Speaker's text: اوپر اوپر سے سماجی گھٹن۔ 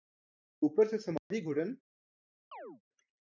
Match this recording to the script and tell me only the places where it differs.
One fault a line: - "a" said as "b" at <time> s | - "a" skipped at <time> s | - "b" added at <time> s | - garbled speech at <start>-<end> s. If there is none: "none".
- "اوپر" skipped at 0.9 s